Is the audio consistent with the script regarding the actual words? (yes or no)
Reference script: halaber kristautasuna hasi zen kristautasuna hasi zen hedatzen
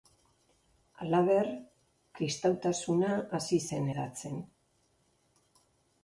no